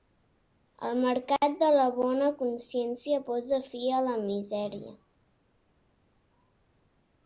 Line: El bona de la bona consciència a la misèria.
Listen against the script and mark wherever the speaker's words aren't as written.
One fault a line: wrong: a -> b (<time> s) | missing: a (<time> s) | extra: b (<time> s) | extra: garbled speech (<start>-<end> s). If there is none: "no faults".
wrong: bona -> mercat (1.0 s)
extra: posa fi (3.3 s)